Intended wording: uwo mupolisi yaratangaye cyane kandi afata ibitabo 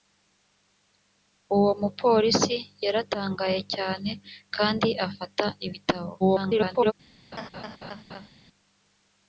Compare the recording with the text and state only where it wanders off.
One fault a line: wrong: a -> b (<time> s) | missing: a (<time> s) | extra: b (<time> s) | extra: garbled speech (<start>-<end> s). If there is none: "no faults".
extra: garbled speech (6.2-6.9 s)